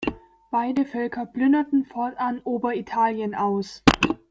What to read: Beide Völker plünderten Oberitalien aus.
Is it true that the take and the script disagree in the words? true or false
true